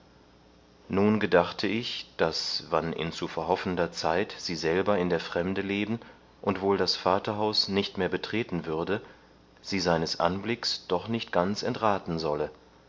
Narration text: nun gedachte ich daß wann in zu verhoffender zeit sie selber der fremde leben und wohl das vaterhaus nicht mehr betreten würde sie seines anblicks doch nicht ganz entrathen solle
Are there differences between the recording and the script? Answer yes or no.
yes